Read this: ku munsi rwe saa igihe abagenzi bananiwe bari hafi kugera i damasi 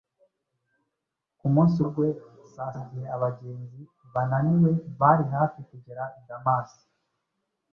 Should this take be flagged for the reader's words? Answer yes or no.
no